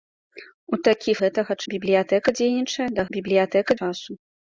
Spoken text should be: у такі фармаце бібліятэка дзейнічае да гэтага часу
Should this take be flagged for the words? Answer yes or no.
yes